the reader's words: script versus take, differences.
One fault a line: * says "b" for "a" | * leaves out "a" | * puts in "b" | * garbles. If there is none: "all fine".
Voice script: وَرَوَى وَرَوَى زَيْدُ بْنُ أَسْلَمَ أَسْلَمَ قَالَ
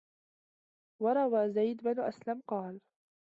* leaves out "وَرَوَى"
* leaves out "أَسْلَمَ"